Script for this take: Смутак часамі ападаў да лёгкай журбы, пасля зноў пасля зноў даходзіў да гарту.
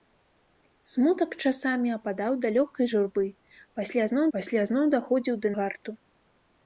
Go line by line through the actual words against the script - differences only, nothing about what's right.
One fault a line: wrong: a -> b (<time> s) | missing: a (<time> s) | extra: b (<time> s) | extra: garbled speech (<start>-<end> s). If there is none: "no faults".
no faults